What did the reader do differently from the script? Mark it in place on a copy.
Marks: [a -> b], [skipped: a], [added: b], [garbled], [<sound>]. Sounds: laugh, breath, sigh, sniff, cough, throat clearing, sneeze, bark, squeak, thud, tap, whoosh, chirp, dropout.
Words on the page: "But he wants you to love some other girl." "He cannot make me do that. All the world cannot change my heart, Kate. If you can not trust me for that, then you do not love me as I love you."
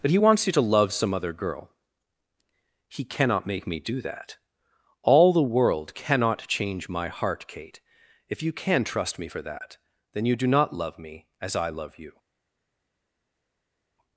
"But he wants you to love some other girl." "He cannot make me do that. All the world cannot change my heart, Kate. If you can [skipped: not] trust me for that, then you do not love me as I love you."